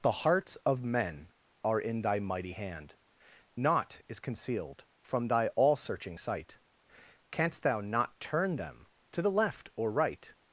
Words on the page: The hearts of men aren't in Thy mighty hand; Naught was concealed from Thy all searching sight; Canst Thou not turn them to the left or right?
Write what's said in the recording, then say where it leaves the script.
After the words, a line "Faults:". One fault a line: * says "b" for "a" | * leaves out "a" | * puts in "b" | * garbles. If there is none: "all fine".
The hearts of men are in Thy mighty hand; Naught is concealed from Thy all searching sight; Canst Thou not turn them to the left or right?
Faults:
* says "are" for "aren't"
* says "is" for "was"